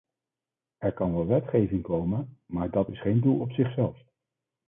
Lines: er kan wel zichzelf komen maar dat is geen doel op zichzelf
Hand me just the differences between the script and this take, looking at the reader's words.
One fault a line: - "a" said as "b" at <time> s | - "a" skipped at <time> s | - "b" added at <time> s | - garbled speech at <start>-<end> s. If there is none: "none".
- "zichzelf" said as "wetgeving" at 1.2 s